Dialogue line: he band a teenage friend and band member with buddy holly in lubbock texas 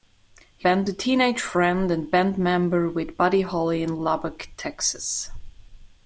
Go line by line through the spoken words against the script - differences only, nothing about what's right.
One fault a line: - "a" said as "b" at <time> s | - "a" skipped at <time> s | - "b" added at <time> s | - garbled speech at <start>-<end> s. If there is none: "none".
none